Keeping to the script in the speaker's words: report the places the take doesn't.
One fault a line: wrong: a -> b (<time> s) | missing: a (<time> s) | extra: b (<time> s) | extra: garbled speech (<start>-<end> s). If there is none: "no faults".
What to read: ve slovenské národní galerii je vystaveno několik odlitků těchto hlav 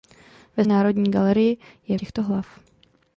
missing: slovenské (0.7 s)
missing: vystaveno několik odlitků (2.0 s)